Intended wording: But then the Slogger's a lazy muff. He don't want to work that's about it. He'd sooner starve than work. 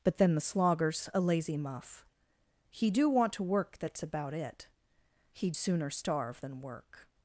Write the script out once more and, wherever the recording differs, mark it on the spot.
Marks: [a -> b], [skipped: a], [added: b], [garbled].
But then the Slogger's a lazy muff. He [don't -> do] want to work that's about it. He'd sooner starve than work.